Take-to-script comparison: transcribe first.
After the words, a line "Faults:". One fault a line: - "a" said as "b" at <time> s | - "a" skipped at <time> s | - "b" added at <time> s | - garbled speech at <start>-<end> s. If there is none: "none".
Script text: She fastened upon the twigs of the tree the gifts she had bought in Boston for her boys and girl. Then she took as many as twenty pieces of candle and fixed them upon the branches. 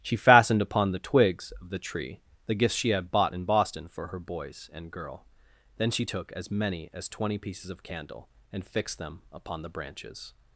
She fastened upon the twigs of the tree the gifts she had bought in Boston for her boys and girl. Then she took as many as twenty pieces of candle and fixed them upon the branches.
Faults:
none